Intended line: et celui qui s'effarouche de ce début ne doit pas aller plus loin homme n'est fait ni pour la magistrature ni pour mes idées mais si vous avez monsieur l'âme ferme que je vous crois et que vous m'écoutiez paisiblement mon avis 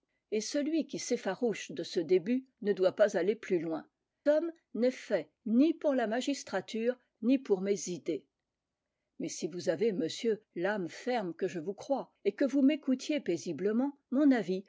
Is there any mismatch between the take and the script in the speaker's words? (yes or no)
no